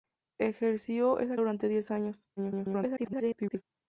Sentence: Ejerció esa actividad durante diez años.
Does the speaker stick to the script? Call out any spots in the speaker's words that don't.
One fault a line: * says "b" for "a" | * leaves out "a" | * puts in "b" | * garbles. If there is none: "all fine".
* leaves out "actividad"
* garbles